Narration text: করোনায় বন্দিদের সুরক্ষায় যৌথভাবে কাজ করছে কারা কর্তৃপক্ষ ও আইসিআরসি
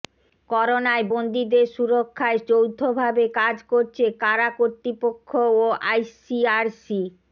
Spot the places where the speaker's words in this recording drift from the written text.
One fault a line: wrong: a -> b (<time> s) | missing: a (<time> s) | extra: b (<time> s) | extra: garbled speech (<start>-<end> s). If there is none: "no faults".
no faults